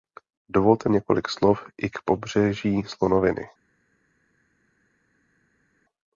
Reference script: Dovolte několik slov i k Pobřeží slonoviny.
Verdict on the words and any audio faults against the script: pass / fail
pass